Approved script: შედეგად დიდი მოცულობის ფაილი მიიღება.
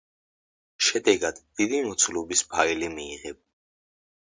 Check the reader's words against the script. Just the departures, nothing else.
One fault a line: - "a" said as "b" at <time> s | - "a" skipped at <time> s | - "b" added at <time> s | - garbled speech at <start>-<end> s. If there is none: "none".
none